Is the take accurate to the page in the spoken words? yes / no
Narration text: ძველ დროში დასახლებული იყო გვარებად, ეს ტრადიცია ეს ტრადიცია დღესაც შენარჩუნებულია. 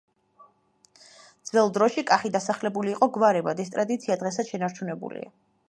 no